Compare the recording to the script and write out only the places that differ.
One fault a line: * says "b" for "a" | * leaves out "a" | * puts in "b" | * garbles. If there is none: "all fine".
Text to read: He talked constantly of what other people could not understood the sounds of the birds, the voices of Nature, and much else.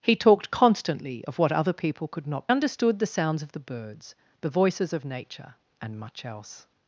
all fine